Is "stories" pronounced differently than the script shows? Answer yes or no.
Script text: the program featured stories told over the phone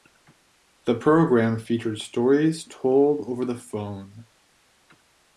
no